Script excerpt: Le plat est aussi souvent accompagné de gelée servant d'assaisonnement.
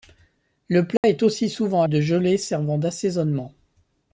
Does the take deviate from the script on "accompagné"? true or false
true